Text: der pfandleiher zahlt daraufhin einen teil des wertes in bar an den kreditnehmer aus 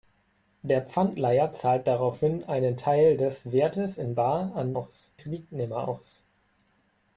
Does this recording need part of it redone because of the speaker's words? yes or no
yes